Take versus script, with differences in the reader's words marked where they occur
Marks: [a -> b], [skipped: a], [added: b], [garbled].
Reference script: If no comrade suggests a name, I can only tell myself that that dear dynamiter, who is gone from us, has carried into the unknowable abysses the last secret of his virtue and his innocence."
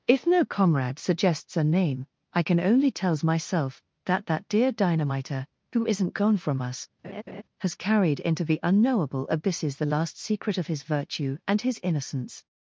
If no comrade suggests a name, I can only [tell -> tells] myself that that dear dynamiter, who [is -> isn't] gone from us, has carried into the unknowable abysses the last secret of his virtue and his innocence."